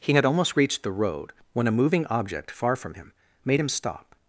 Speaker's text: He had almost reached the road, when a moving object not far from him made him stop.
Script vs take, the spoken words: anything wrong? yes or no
yes